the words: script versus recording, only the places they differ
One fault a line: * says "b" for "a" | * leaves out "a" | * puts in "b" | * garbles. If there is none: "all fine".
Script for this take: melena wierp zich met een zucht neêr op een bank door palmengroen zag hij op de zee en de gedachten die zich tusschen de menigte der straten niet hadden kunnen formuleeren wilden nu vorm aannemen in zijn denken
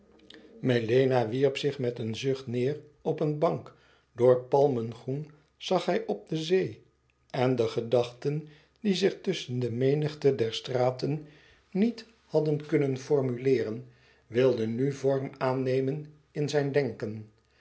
all fine